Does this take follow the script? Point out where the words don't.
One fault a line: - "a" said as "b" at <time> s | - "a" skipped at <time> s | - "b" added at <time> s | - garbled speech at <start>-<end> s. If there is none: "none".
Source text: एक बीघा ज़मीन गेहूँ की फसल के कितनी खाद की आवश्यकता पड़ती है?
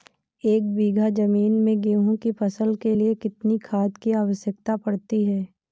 - "में" added at 1.6 s
- "लिए" added at 2.9 s